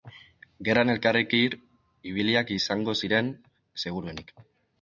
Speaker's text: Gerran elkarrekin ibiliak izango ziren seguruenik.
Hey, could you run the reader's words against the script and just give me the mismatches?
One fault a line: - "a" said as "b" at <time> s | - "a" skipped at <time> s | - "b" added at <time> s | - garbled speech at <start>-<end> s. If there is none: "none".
none